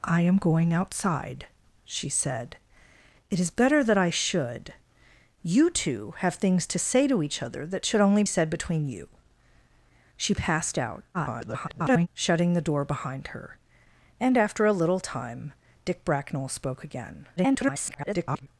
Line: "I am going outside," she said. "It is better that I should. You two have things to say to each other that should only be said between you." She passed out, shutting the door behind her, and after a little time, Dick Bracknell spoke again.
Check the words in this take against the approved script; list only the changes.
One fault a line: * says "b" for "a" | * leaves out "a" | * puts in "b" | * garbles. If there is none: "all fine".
* leaves out "be"
* garbles
* garbles